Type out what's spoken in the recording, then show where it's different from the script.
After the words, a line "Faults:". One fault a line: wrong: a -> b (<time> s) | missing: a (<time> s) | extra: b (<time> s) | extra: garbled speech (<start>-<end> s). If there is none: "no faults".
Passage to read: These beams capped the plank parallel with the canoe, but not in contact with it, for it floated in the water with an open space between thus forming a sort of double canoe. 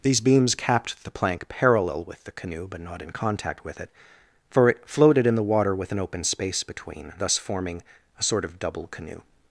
These beams capped the plank parallel with the canoe, but not in contact with it, for it floated in the water with an open space between thus forming a sort of double canoe.
Faults:
no faults